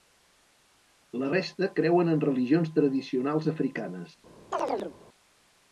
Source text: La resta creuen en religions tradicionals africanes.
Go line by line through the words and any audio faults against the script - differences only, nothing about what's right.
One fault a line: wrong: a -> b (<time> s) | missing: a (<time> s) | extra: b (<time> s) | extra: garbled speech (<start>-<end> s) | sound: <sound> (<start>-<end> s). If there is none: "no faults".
sound: chirp (4.5-5.0 s)